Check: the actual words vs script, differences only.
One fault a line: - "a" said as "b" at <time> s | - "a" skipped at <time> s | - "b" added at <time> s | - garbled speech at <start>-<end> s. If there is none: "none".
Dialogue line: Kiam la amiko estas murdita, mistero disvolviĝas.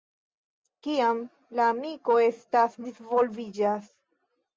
- "murdita mistero" skipped at 2.8 s